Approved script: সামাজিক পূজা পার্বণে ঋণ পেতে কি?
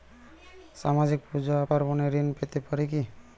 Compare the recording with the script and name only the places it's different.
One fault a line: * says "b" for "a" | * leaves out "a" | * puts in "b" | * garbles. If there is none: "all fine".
* puts in "পারে"